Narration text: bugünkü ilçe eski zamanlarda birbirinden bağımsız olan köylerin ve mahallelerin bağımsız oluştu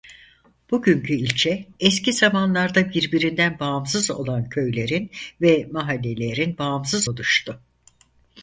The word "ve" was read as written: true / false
true